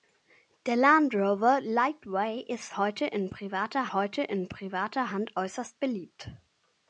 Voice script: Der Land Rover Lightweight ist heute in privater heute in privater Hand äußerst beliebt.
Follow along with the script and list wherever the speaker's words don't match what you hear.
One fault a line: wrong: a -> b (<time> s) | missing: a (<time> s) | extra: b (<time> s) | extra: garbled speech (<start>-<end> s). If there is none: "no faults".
no faults